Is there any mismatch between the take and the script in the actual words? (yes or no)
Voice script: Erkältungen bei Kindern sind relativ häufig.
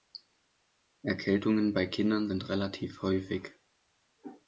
no